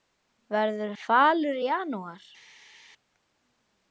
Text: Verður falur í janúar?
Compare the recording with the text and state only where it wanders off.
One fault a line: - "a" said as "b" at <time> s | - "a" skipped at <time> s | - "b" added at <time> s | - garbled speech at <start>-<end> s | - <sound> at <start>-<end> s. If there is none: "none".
none